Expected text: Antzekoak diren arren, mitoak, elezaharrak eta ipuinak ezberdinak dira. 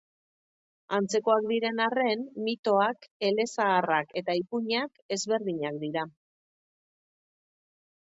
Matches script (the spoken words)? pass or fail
pass